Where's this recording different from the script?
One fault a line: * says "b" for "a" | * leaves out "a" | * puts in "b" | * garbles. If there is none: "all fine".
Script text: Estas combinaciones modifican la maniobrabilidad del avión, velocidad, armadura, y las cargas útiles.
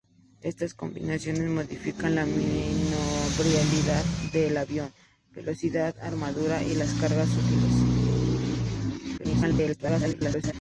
* garbles